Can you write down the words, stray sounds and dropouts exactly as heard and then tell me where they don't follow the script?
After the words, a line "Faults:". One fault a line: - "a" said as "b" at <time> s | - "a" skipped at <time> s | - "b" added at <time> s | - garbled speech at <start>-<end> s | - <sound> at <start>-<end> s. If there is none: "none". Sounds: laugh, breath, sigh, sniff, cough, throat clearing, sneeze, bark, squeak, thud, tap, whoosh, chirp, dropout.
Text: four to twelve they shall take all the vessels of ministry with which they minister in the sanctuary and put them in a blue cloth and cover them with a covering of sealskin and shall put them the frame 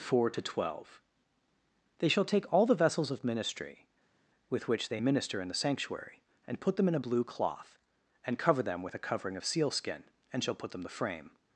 four to twelve they shall take all the vessels of ministry with which they minister in the sanctuary and put them in a blue cloth and cover them with a covering of sealskin and shall put them the frame
Faults:
none